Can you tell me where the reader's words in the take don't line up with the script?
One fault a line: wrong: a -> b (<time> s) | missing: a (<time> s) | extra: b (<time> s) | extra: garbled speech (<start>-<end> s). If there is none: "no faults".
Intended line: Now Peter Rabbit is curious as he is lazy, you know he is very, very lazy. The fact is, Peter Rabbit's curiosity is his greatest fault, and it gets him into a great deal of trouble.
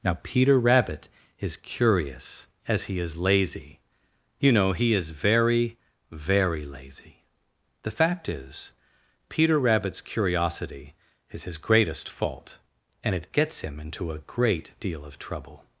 no faults